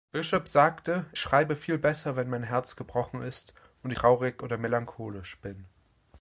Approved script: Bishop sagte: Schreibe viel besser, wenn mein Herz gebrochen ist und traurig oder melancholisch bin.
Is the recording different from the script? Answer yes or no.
no